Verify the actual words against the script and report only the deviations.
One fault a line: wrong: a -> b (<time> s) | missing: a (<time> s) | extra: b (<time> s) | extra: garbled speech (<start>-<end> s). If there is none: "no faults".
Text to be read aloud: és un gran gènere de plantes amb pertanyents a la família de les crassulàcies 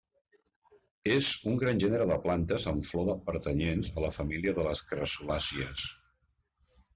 extra: flor (2.9 s)